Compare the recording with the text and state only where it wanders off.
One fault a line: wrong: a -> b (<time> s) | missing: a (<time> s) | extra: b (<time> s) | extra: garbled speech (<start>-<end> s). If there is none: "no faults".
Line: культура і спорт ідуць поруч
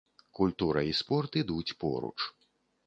no faults